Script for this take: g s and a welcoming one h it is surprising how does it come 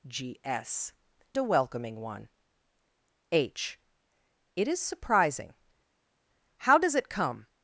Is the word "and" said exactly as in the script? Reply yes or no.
no